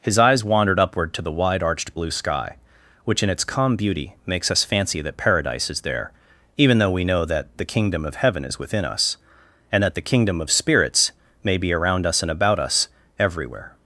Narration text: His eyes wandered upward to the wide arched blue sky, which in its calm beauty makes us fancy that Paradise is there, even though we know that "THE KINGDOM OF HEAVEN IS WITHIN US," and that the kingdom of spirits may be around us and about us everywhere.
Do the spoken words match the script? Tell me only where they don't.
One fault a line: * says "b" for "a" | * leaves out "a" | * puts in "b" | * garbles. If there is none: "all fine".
all fine